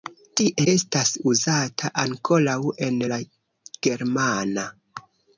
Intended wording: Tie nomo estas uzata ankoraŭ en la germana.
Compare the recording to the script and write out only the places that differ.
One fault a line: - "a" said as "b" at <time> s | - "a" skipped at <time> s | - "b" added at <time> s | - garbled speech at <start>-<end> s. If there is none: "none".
- "nomo" skipped at 0.6 s